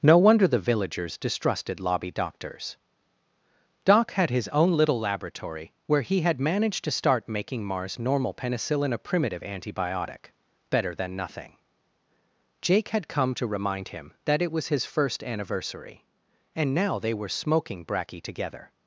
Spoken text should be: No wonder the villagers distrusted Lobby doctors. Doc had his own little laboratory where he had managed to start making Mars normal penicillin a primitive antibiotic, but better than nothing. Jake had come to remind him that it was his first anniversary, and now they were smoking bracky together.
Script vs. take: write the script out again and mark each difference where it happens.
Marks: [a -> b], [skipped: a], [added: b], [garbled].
No wonder the villagers distrusted Lobby doctors. Doc had his own little laboratory where he had managed to start making Mars normal penicillin a primitive antibiotic, [skipped: but] better than nothing. Jake had come to remind him that it was his first anniversary, and now they were smoking bracky together.